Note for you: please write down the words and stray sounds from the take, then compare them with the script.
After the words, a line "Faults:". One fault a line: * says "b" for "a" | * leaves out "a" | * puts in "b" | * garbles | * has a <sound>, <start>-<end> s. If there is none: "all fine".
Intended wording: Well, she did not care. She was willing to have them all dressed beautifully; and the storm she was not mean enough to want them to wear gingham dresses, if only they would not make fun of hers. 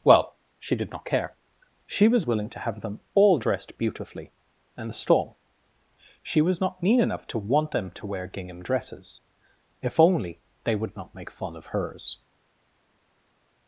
Well, she did not care. She was willing to have them all dressed beautifully; and the storm she was not mean enough to want them to wear gingham dresses, if only they would not make fun of hers.
Faults:
all fine